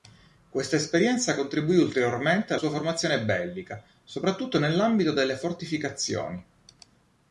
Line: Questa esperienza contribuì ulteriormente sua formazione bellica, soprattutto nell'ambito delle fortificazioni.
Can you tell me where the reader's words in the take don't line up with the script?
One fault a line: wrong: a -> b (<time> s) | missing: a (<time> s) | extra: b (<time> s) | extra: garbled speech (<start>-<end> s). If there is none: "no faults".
no faults